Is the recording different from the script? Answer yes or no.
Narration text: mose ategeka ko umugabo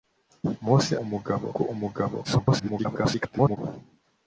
yes